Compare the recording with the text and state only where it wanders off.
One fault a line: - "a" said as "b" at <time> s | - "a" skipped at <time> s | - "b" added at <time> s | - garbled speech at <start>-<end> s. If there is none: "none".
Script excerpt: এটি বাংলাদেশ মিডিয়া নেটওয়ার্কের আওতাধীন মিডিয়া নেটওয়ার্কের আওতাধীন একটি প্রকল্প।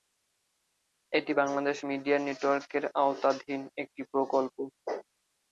- "মিডিয়া নেটওয়ার্কের আওতাধীন" skipped at 3.6 s